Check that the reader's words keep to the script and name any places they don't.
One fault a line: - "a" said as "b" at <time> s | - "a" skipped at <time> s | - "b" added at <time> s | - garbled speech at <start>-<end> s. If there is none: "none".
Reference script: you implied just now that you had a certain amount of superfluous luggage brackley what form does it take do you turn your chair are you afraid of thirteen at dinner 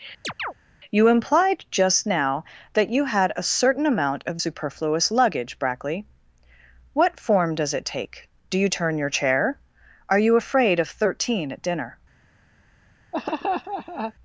none